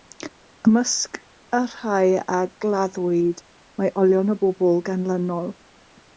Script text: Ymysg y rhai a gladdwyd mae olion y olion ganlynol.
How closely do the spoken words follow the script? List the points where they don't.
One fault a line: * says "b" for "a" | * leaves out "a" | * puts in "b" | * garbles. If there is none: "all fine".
* says "bobl" for "olion"